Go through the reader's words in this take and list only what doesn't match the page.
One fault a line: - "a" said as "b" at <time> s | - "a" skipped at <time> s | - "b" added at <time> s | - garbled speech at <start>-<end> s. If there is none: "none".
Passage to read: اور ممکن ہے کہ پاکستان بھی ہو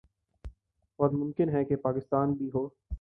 none